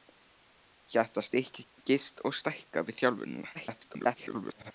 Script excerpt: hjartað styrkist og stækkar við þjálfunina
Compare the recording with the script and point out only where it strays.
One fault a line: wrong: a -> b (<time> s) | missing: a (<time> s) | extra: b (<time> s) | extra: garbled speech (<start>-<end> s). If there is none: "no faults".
extra: garbled speech (3.5-4.7 s)